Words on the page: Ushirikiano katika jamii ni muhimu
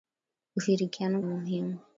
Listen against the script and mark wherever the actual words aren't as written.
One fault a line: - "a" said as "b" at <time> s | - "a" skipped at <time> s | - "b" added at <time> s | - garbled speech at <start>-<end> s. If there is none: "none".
- "katika jamii ni" skipped at 1.2 s